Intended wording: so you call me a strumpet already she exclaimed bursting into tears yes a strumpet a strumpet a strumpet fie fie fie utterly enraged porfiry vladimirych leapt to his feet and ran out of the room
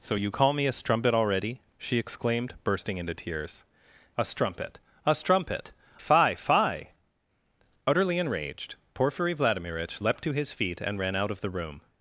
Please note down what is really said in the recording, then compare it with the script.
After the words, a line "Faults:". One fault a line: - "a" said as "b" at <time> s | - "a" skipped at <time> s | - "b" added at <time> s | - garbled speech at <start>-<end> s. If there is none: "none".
so you call me a strumpet already she exclaimed bursting into tears a strumpet a strumpet fie fie utterly enraged porfiry vladimirych leapt to his feet and ran out of the room
Faults:
- "yes" skipped at 3.7 s
- "a strumpet fie" skipped at 5.7 s